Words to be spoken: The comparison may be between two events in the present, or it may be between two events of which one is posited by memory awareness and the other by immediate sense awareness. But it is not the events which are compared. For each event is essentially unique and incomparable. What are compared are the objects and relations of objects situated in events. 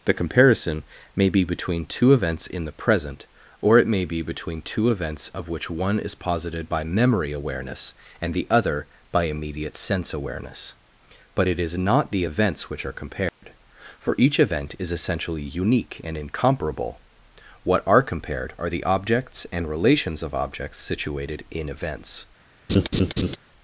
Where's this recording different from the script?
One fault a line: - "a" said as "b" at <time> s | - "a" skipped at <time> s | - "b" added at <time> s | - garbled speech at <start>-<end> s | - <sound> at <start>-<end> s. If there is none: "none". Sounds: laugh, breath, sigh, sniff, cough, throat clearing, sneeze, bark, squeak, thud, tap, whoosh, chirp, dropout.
- dropout at 13.3-13.4 s
- laugh at 22.7-23.4 s